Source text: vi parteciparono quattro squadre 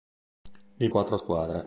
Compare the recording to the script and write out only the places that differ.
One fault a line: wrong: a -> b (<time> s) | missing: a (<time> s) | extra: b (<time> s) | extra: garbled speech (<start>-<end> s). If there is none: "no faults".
missing: parteciparono (0.9 s)